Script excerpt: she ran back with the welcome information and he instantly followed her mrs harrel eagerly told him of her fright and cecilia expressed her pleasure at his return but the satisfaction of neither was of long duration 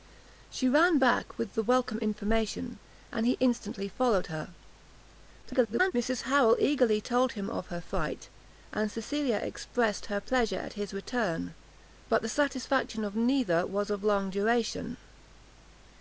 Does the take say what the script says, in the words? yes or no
no